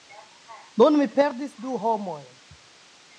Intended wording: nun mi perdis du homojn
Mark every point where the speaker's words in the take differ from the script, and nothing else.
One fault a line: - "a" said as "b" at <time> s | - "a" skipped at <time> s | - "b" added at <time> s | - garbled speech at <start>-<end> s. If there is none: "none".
none